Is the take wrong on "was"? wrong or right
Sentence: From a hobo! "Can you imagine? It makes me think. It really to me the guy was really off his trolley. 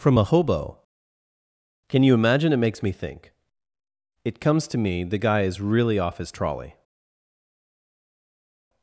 wrong